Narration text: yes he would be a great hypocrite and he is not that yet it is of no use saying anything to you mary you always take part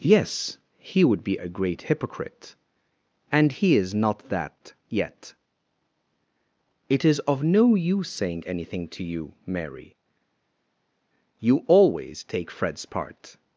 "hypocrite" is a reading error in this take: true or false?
false